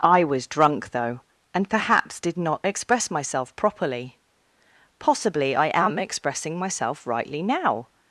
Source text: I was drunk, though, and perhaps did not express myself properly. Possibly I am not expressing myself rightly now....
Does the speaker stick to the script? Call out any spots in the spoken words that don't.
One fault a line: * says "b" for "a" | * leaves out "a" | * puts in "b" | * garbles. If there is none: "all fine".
* leaves out "not"